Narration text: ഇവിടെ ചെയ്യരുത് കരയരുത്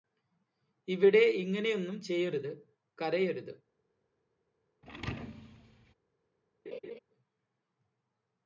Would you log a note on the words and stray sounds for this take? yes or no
yes